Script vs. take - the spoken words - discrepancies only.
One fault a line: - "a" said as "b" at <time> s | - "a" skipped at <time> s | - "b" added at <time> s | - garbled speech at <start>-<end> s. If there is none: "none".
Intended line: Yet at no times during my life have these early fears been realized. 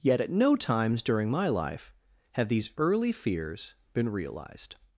none